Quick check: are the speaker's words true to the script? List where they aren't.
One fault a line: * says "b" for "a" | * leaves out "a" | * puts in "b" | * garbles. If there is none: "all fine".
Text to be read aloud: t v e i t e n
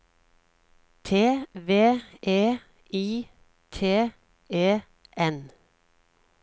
all fine